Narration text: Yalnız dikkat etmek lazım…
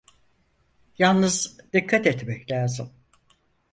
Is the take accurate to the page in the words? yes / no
yes